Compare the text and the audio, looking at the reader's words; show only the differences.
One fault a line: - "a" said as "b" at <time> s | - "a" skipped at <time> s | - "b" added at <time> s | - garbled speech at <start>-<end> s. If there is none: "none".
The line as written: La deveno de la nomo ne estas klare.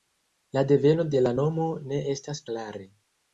none